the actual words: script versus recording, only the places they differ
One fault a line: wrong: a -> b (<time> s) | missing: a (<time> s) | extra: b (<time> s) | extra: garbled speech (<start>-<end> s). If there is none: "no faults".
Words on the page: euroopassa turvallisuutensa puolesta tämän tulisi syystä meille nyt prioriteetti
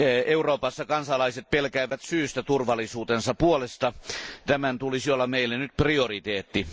extra: kansalaiset pelkäävät syystä (0.8 s)
wrong: syystä -> olla (5.1 s)